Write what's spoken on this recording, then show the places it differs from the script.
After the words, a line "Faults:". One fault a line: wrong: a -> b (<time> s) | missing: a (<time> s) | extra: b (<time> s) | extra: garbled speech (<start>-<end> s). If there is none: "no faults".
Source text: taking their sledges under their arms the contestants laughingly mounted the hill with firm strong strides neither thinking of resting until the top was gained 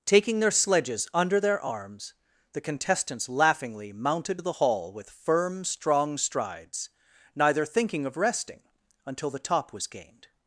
taking their sledges under their arms the contestants laughingly mounted the hall with firm strong strides neither thinking of resting until the top was gained
Faults:
wrong: hill -> hall (4.5 s)